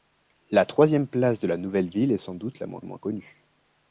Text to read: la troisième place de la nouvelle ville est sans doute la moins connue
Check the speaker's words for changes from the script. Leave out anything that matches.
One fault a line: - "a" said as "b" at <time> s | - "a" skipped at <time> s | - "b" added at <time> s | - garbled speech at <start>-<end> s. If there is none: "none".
- "moins" added at 2.8 s